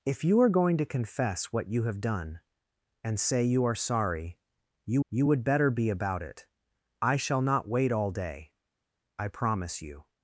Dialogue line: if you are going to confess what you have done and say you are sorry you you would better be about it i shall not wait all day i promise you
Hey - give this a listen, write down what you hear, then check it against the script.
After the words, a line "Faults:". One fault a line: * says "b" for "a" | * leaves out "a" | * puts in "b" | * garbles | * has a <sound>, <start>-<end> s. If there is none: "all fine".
if you are going to confess what you have done and say you are sorry you you would better be about it i shall not wait all day i promise you
Faults:
all fine